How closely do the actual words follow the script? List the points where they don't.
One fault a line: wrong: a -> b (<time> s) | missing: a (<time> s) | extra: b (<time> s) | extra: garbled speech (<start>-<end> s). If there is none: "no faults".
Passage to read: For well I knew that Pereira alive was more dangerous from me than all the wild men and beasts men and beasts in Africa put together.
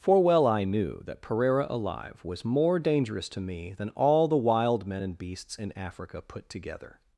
wrong: from -> to (3.3 s)
missing: men and beasts (5.6 s)